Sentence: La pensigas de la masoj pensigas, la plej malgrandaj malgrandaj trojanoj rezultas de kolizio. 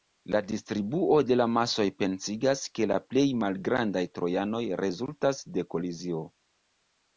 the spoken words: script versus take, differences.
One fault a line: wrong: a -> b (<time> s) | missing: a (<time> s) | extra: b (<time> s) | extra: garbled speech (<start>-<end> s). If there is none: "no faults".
wrong: pensigas -> distribuo (0.5 s)
extra: ke (2.8 s)
missing: malgrandaj (4.0 s)